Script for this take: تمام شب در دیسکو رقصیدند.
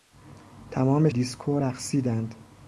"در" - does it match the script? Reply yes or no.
no